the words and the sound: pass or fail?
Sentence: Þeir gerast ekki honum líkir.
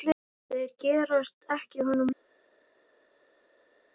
pass